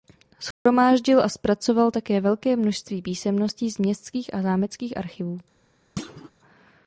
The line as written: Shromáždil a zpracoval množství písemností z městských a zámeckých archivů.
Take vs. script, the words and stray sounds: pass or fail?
fail